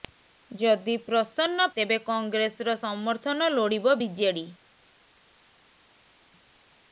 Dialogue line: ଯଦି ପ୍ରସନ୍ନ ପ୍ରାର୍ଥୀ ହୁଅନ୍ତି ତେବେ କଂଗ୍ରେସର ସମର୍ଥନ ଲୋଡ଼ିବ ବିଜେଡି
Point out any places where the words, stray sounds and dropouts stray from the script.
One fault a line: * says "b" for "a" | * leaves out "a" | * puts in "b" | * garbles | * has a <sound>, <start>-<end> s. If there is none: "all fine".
* leaves out "ପ୍ରାର୍ଥୀ ହୁଅନ୍ତି"